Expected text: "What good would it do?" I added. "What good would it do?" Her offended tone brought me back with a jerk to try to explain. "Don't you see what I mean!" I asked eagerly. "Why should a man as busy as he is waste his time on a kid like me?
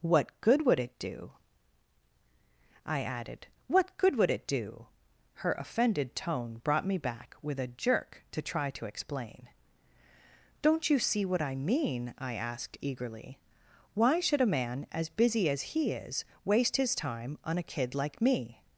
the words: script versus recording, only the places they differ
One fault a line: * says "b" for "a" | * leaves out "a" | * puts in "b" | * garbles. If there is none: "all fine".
all fine